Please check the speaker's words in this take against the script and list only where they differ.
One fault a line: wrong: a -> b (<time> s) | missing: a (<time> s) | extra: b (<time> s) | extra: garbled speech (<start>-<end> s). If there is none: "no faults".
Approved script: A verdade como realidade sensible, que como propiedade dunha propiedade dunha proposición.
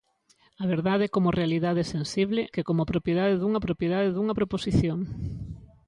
no faults